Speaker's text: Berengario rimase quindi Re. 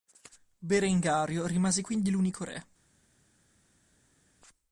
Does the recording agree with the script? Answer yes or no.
no